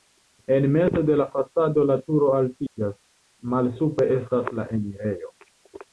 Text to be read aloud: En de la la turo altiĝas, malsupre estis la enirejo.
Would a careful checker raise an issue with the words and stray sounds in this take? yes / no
yes